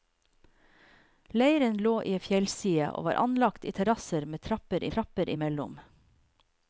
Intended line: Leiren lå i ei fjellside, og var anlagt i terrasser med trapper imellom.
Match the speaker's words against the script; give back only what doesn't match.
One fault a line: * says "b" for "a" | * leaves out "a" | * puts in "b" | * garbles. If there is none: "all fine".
* puts in "trapper"